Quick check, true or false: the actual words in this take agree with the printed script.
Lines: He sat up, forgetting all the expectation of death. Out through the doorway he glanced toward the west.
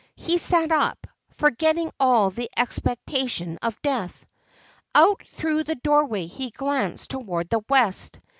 true